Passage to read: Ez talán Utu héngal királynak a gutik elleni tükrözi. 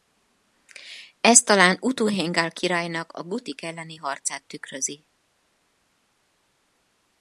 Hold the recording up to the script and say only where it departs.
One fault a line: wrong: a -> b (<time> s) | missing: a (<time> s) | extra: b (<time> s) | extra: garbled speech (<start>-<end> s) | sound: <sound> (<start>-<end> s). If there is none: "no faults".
extra: harcát (4.0 s)